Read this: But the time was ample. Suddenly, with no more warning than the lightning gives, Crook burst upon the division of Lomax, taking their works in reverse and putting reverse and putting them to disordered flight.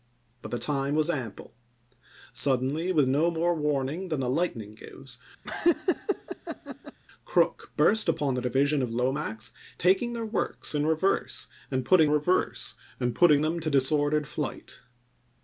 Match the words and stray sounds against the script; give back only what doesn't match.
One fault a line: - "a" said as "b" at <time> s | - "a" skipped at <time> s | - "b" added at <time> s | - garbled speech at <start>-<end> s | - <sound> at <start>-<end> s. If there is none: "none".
- laugh at 5.4-7.0 s